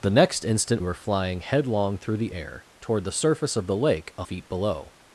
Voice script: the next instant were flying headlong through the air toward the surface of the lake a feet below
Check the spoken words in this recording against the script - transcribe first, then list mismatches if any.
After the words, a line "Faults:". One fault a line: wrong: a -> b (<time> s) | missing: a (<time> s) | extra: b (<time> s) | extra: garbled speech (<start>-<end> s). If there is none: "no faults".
the next instant were flying headlong through the air toward the surface of the lake a feet below
Faults:
no faults